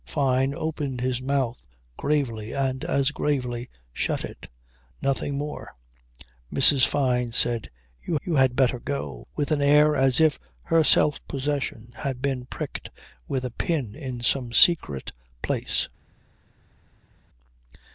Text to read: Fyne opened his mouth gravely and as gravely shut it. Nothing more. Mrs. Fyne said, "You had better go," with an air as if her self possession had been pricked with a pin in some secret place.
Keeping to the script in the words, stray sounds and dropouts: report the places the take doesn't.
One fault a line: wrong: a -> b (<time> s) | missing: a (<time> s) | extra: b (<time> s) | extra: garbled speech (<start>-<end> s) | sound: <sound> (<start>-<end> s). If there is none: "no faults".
extra: you (8.2 s)